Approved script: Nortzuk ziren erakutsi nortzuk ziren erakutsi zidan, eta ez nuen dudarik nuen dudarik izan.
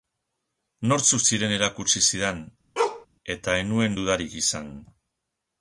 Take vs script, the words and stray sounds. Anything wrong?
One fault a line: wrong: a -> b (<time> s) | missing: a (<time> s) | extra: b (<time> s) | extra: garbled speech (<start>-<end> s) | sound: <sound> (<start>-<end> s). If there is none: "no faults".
missing: nortzuk ziren erakutsi (2.0 s)
sound: bark (2.8-3.1 s)
missing: nuen dudarik (4.4 s)